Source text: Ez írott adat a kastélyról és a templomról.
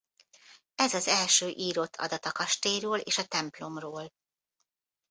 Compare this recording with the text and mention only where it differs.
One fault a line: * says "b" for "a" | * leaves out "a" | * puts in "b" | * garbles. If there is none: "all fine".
* puts in "az első"